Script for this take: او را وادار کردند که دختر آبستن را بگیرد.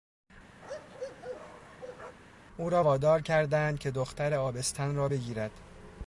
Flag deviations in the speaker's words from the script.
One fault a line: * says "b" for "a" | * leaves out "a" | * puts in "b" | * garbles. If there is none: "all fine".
all fine